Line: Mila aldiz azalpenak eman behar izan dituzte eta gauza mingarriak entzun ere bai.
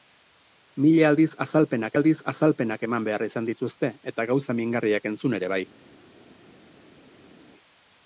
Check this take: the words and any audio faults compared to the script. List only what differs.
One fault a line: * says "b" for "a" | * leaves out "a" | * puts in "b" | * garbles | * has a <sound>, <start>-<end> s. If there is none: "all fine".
* puts in "aldiz azalpenak"